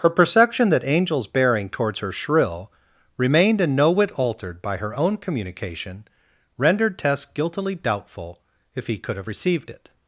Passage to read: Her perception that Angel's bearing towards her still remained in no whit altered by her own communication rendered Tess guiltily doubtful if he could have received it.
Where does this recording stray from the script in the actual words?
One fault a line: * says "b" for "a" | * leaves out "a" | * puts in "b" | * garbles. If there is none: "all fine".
* says "shrill" for "still"